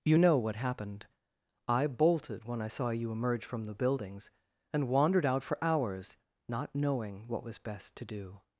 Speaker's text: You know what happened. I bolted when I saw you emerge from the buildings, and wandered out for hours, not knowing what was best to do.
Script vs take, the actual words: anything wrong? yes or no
no